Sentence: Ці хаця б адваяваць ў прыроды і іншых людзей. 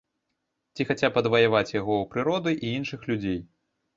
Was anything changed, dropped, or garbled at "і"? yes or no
no